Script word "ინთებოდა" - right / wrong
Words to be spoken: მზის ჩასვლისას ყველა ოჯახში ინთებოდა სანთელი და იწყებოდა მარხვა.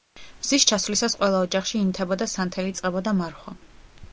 right